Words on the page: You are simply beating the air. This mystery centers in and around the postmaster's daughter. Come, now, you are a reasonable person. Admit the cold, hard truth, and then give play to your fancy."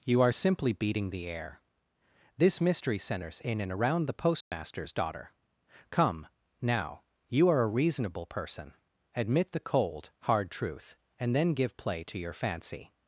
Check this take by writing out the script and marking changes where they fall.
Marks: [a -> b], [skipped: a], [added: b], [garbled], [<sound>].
You are simply beating the air. This mystery centers in and around the postmaster's [dropout] daughter. Come, now, you are a reasonable person. Admit the cold, hard truth, and then give play to your fancy."